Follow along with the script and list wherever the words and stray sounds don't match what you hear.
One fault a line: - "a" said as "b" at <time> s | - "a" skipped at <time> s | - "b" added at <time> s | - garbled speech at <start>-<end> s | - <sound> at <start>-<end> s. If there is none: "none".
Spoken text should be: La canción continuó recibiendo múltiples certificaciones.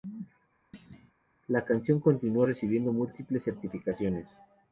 - thud at 0.7-1.1 s